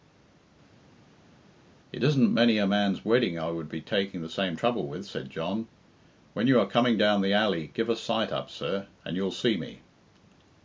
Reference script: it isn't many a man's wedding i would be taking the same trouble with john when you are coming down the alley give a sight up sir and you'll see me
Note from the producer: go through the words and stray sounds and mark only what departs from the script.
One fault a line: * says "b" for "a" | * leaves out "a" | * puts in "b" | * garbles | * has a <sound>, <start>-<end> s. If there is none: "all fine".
* puts in "said"